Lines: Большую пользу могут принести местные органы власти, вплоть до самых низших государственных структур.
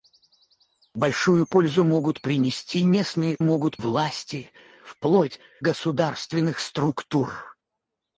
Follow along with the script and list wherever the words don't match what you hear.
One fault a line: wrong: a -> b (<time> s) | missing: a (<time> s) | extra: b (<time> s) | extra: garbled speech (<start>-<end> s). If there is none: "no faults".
wrong: органы -> могут (3.4 s)
missing: до самых низших (5.4 s)